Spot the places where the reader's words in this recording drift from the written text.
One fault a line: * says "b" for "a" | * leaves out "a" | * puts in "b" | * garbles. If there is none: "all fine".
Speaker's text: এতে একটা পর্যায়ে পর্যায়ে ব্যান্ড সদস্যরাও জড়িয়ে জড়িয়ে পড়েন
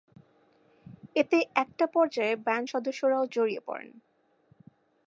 * leaves out "পর্যায়ে"
* leaves out "জড়িয়ে"